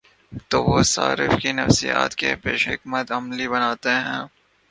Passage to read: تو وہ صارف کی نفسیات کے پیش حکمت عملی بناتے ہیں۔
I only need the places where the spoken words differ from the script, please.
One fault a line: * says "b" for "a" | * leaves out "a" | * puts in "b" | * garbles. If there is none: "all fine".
all fine